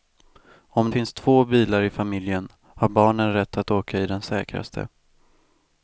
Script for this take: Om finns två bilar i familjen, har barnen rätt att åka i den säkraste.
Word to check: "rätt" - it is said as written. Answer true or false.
true